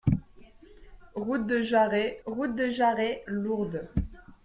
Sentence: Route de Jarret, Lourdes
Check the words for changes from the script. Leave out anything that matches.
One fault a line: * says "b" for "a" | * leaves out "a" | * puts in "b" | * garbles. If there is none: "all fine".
* puts in "route de Jarret"